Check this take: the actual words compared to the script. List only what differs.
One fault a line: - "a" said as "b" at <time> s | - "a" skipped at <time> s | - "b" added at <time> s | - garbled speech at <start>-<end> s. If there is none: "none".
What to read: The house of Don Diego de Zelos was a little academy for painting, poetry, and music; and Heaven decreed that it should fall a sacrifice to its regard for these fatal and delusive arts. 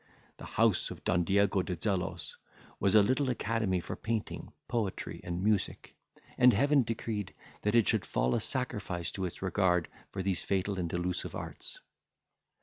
none